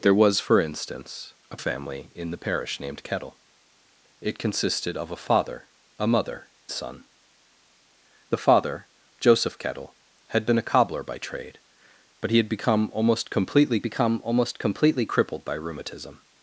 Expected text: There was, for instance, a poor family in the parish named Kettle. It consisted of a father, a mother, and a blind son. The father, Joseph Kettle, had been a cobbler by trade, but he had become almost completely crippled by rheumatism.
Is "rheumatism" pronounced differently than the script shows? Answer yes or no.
no